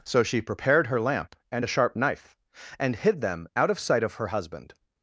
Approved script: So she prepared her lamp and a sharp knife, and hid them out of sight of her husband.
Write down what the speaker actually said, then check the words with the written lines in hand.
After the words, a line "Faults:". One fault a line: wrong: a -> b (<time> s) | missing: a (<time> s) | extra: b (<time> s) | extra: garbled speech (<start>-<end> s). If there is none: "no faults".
So she prepared her lamp and a sharp knife, and hid them out of sight of her husband.
Faults:
no faults